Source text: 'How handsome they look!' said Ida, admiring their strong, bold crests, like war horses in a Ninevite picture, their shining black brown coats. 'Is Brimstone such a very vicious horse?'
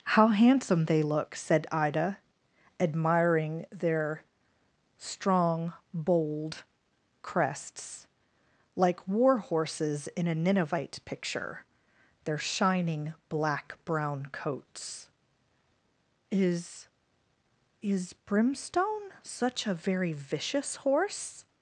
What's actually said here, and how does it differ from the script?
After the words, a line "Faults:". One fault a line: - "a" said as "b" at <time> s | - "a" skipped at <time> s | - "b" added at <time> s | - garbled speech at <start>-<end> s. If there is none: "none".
'How handsome they look!' said Ida, admiring their strong, bold crests, like war horses in a Ninevite picture, their shining black brown coats. 'Is Is Brimstone such a very vicious horse?'
Faults:
- "Is" added at 17.8 s